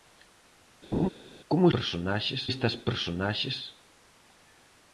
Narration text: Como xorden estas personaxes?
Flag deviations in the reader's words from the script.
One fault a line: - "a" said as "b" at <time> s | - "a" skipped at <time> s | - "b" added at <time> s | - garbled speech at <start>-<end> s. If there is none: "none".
- "xorden" said as "personaxes" at 1.7 s